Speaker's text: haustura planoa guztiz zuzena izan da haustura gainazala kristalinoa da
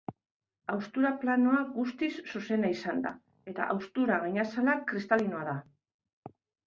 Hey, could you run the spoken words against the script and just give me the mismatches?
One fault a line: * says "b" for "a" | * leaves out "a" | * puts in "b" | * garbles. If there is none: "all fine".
* puts in "eta"